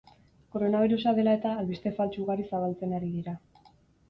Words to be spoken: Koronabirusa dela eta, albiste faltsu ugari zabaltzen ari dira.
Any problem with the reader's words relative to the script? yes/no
no